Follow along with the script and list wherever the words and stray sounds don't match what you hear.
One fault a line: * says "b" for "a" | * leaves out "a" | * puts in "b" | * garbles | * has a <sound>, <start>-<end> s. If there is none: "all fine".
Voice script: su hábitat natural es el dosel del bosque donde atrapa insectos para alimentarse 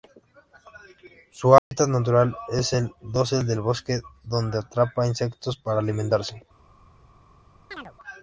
* has a dropout, 1.6-1.7 s
* has a chirp, 7.7-7.9 s